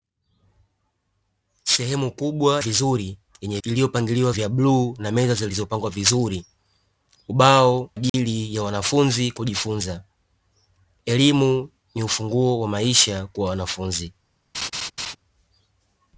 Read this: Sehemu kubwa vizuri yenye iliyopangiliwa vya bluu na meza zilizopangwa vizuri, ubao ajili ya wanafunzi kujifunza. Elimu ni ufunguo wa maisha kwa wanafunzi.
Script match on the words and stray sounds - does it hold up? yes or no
no